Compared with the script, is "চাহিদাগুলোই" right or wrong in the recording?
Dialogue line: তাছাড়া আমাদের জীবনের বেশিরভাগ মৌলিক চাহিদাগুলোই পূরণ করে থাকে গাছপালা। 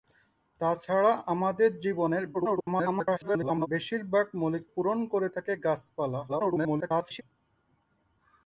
wrong